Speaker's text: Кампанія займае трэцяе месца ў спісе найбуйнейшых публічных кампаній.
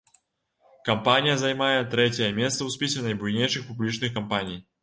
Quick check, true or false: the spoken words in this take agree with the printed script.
true